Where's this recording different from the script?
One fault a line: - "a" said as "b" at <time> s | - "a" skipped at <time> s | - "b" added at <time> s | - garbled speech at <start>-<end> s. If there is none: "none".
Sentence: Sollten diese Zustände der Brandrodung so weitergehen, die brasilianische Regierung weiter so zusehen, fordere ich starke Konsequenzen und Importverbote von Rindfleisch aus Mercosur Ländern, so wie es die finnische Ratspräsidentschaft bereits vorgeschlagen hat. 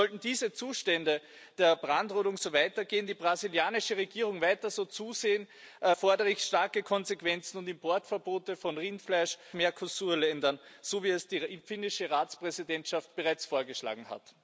- "aus" skipped at 9.4 s